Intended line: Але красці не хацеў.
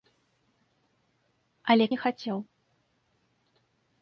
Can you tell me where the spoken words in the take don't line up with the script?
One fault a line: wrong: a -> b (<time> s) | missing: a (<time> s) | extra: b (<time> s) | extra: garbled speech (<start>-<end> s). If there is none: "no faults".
missing: красці (1.9 s)